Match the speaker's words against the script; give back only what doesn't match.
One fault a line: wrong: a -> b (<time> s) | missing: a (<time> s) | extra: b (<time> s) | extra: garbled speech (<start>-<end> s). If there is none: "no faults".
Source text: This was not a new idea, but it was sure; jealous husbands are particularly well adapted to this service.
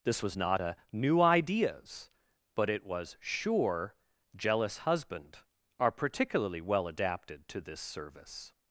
wrong: idea -> ideas (1.2 s)
wrong: husbands -> husband (4.8 s)